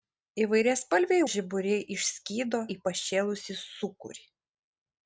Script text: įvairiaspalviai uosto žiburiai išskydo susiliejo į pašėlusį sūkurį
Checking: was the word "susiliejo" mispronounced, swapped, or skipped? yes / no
yes